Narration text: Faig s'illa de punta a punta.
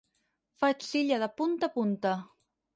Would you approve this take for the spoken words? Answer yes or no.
yes